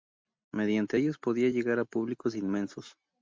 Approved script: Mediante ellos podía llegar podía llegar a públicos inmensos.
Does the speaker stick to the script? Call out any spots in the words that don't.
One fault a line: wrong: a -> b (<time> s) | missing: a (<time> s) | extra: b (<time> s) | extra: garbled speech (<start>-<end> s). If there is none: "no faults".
missing: podía llegar (1.8 s)